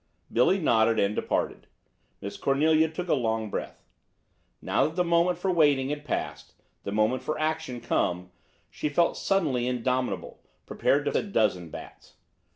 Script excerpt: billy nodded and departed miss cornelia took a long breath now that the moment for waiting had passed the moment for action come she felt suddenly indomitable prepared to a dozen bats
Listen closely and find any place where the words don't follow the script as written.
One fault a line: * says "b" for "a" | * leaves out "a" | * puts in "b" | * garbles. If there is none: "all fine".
all fine